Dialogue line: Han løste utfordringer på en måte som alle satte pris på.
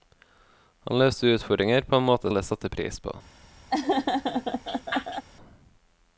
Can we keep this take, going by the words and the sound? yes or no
no